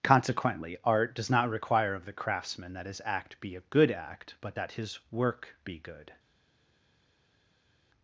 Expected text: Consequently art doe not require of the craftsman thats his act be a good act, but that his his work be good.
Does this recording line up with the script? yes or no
no